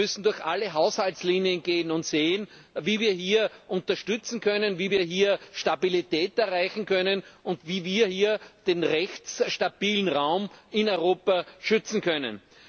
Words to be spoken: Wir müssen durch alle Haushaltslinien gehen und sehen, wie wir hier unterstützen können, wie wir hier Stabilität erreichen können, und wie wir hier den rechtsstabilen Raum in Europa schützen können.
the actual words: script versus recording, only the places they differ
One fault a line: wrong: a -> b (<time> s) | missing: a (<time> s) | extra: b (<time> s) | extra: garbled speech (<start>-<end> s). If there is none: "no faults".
no faults